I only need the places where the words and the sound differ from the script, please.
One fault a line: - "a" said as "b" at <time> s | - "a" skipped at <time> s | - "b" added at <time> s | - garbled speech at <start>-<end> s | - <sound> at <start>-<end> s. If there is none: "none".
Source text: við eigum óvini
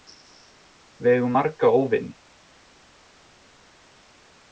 - "marga" added at 1.4 s